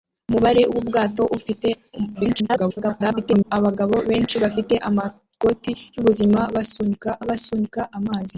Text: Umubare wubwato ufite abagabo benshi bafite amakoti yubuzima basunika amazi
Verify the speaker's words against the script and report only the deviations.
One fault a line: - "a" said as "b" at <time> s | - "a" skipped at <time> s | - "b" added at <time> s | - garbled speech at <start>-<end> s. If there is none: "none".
- garbled speech at 2.1-3.5 s
- "basunika" added at 7.3 s